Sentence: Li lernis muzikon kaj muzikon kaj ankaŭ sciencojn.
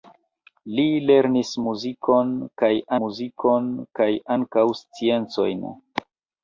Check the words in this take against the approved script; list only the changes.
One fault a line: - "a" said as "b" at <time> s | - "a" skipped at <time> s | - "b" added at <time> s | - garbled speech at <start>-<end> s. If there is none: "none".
none